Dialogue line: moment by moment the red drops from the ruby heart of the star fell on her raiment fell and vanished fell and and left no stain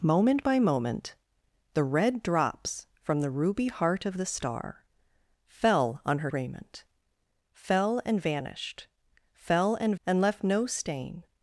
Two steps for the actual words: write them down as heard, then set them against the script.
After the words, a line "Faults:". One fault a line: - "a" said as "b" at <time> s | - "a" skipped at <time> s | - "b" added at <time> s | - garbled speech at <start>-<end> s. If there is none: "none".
moment by moment the red drops from the ruby heart of the star fell on her raiment fell and vanished fell and and left no stain
Faults:
none